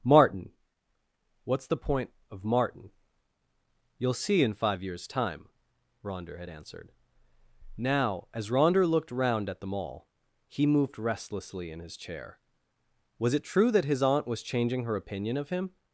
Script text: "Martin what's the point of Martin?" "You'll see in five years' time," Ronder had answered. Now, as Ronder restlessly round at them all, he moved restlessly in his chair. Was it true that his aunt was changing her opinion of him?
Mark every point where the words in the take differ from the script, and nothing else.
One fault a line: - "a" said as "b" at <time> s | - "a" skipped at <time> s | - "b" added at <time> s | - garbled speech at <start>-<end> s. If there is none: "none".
- "restlessly" said as "looked" at 8.9 s